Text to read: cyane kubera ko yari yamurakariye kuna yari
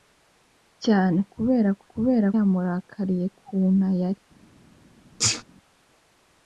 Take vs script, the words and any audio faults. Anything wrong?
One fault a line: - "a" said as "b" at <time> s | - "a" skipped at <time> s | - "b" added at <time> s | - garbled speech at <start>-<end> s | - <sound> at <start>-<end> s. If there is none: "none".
- "yari" said as "kubera" at 1.9 s
- sneeze at 5.2-5.4 s